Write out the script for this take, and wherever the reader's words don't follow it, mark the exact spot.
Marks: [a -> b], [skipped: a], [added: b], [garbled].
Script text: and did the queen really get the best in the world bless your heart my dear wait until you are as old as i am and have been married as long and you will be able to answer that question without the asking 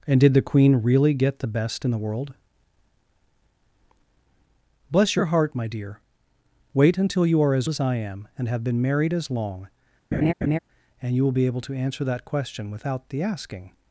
and did the queen really get the best in the world bless your heart my dear wait until you are as [skipped: old] as i am and have been married as long and you will be able to answer that question without the asking